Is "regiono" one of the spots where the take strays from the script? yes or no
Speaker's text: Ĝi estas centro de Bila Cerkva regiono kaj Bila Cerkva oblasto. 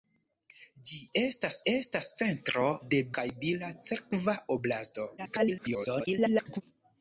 yes